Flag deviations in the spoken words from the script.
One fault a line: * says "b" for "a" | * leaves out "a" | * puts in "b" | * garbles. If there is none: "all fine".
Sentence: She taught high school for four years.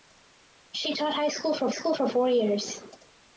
* puts in "school for"